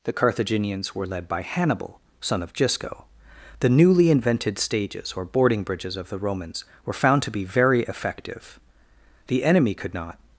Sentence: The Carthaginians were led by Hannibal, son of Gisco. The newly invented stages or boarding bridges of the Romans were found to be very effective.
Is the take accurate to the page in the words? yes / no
no